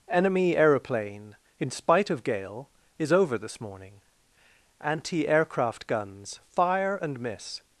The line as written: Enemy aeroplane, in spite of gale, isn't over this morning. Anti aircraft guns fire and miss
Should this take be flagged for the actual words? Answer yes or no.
yes